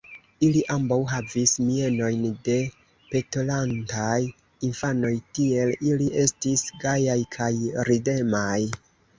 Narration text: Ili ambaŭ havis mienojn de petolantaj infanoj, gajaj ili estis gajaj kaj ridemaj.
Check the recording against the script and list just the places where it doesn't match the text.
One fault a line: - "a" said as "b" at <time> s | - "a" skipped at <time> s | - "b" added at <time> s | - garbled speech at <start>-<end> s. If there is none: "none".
- "gajaj" said as "tiel" at 5.4 s